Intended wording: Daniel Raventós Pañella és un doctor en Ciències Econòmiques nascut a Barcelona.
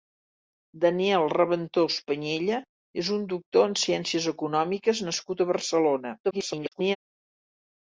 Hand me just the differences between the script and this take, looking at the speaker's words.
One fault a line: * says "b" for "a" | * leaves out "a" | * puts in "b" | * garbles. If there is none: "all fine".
* garbles